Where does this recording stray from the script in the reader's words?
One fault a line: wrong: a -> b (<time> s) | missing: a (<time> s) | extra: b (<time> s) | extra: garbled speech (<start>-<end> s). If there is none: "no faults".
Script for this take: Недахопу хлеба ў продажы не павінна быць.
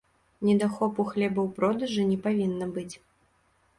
no faults